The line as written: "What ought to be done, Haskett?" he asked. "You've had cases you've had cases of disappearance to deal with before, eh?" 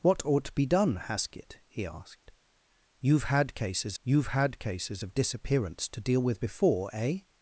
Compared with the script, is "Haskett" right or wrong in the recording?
right